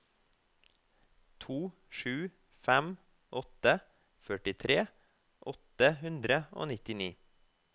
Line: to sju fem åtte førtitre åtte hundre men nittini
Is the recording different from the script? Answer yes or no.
yes